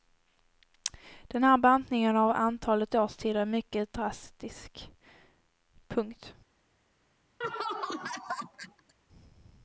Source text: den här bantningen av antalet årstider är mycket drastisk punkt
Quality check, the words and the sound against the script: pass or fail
fail